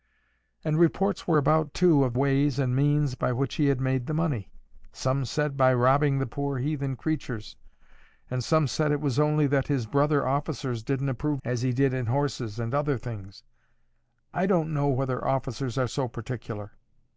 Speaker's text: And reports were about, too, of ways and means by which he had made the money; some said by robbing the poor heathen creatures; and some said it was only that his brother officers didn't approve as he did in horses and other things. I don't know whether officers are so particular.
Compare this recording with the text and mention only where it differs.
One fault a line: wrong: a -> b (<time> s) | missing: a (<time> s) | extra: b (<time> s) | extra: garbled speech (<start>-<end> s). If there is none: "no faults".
no faults